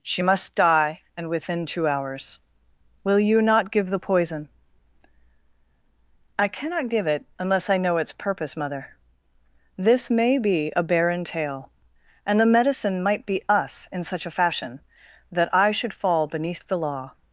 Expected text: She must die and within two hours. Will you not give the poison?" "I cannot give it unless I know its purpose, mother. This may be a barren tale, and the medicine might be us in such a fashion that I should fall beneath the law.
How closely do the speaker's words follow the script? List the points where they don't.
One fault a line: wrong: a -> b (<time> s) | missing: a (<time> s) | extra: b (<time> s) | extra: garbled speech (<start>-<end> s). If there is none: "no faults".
no faults